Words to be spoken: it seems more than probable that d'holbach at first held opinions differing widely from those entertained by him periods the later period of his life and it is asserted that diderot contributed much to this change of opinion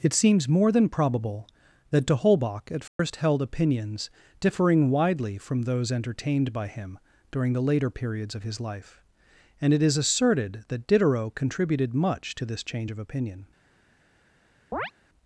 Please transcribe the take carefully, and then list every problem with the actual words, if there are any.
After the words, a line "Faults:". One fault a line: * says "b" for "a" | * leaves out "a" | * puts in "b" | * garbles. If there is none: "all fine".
it seems more than probable that d'holbach at first held opinions differing widely from those entertained by him during the later periods of his life and it is asserted that diderot contributed much to this change of opinion
Faults:
* says "during" for "periods"
* says "periods" for "period"